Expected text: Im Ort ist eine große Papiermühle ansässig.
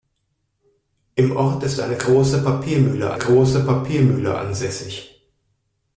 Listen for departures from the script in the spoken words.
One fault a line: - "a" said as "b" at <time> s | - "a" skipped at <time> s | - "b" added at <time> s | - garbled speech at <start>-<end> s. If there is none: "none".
- "große Papiermühle" added at 3.2 s